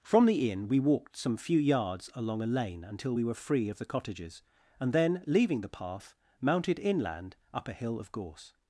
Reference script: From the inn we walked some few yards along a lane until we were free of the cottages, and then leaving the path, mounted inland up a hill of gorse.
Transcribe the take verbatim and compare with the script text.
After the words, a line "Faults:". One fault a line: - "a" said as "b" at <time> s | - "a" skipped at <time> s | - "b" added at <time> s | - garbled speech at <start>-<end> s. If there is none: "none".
From the inn we walked some few yards along a lane until we were free of the cottages, and then leaving the path, mounted inland up a hill of gorse.
Faults:
none